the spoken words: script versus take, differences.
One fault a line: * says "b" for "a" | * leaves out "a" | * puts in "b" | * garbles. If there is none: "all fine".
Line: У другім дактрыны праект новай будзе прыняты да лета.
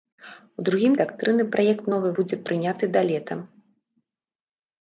all fine